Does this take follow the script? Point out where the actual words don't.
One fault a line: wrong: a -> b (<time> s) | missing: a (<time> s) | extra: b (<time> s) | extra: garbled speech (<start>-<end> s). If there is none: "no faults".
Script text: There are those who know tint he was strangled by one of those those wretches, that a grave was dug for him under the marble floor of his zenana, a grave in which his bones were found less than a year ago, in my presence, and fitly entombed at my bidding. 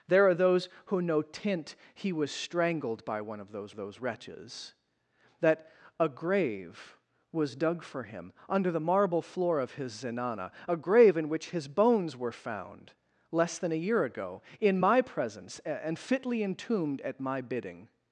no faults